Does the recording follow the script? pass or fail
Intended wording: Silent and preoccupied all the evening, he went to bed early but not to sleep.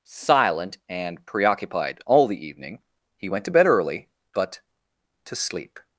fail